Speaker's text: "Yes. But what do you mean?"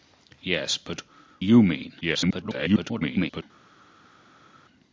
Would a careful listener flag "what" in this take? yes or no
yes